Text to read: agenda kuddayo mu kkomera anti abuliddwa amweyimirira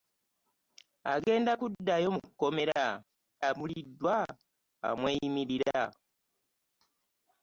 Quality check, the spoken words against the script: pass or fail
fail